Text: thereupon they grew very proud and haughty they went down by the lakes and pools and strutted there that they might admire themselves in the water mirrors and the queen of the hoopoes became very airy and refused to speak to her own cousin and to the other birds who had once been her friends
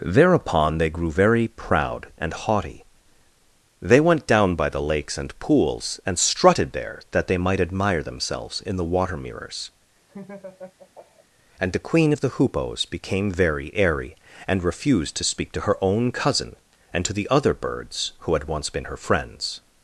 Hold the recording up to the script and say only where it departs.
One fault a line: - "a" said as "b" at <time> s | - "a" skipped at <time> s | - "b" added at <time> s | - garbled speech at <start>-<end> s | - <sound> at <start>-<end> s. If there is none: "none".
- laugh at 10.1-11.3 s